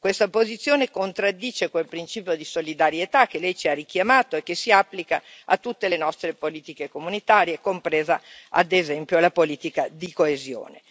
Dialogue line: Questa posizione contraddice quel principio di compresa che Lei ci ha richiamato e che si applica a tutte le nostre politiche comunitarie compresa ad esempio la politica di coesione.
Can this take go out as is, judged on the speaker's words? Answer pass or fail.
fail